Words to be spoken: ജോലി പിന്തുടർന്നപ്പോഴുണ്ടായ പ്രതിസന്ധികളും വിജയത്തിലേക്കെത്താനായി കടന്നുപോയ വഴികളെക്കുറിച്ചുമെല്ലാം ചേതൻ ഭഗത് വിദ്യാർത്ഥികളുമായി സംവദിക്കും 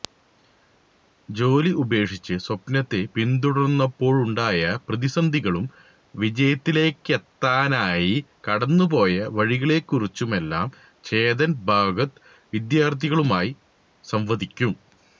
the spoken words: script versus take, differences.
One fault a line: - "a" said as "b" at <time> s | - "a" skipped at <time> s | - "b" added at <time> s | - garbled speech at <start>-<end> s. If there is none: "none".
- "ഉപേക്ഷിച്ച് സ്വപ്നത്തെ" added at 1.8 s